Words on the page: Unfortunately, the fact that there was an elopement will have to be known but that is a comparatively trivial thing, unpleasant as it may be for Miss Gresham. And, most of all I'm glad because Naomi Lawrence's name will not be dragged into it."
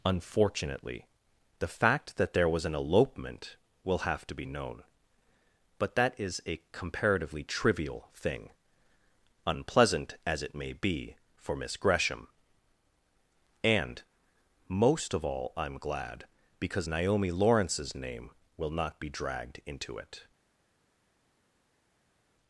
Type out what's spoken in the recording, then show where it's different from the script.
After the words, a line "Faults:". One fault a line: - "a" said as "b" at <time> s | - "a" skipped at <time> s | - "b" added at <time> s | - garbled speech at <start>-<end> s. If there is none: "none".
Unfortunately, the fact that there was an elopement will have to be known but that is a comparatively trivial thing, unpleasant as it may be for Miss Gresham. And, most of all I'm glad because Naomi Lawrence's name will not be dragged into it."
Faults:
none